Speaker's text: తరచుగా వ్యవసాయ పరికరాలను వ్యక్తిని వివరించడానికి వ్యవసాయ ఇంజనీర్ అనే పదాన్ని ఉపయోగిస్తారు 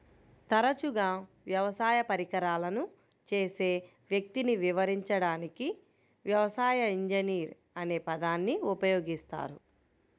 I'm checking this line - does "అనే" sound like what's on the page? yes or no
yes